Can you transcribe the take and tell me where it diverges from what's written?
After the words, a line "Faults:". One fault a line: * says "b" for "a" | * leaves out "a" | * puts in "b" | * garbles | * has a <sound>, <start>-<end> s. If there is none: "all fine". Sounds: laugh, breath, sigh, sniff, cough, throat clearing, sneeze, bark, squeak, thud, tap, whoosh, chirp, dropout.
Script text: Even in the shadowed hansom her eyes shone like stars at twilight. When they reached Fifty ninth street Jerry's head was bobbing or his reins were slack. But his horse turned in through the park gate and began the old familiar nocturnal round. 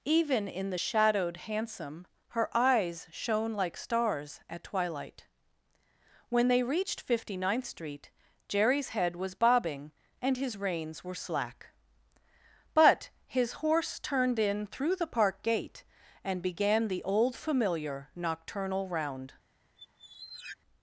Even in the shadowed hansom her eyes shone like stars at twilight. When they reached Fifty ninth street Jerry's head was bobbing and his reins were slack. But his horse turned in through the park gate and began the old familiar nocturnal round.
Faults:
* says "and" for "or"
* has a squeak, 19.8-20.6 s